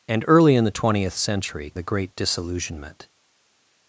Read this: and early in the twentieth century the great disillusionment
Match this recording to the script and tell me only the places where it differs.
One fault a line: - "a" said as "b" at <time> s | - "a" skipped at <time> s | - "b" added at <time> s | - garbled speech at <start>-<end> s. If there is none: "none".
none